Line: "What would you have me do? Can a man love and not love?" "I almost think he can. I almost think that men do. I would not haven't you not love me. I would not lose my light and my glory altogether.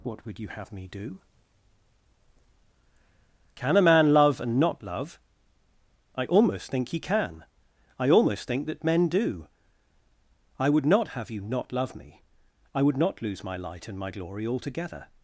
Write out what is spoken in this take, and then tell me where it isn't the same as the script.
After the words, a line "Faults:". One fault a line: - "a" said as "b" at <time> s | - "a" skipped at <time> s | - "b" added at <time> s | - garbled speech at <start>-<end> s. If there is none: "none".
"What would you have me do? Can a man love and not love?" "I almost think he can. I almost think that men do. I would not have you not love me. I would not lose my light and my glory altogether.
Faults:
- "haven't" said as "have" at 11.1 s